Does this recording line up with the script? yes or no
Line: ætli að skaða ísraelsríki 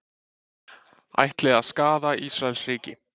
yes